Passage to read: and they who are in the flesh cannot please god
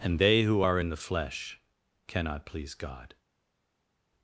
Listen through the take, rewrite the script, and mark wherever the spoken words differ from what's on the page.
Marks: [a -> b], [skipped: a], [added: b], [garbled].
and they who are in the flesh cannot please god